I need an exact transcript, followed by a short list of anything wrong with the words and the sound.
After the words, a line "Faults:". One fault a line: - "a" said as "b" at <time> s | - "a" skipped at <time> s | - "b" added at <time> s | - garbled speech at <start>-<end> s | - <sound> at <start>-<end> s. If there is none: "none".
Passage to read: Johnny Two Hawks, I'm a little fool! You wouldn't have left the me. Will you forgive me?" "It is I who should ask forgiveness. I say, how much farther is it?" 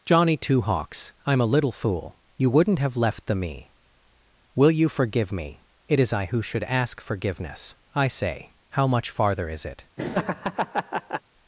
Johnny Two Hawks, I'm a little fool! You wouldn't have left the me. Will you forgive me?" "It is I who should ask forgiveness. I say, how much farther is it?"
Faults:
- laugh at 10.0-11.2 s